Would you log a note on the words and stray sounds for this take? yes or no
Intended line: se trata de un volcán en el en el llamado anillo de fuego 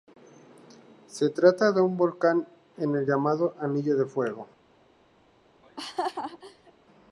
yes